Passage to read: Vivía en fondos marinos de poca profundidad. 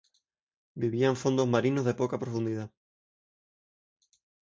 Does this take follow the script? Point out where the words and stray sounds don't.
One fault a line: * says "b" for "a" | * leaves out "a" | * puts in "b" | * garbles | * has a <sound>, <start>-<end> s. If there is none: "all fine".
all fine